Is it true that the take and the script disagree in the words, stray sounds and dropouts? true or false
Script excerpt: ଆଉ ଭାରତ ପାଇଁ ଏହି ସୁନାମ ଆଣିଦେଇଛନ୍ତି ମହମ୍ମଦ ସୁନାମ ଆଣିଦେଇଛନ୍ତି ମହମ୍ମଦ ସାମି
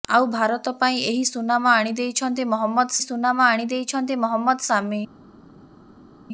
false